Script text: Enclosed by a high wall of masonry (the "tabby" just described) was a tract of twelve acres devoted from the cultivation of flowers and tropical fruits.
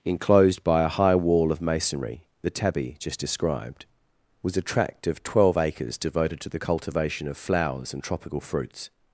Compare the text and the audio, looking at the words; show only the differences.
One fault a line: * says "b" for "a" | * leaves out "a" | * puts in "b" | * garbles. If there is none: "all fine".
* says "to" for "from"